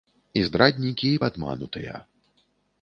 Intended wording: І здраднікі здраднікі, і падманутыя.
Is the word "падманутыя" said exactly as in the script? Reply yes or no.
yes